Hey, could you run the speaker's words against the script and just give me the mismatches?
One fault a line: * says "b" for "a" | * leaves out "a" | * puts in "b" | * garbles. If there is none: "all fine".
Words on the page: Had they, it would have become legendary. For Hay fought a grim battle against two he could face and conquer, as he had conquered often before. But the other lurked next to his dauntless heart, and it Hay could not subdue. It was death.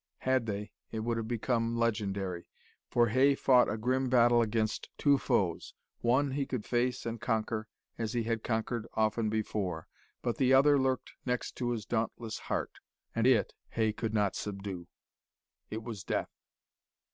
* puts in "foes One"